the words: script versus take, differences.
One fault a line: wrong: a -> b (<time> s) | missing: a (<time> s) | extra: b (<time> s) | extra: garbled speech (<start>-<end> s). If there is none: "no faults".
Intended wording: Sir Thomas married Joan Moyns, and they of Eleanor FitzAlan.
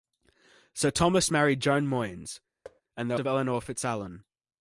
no faults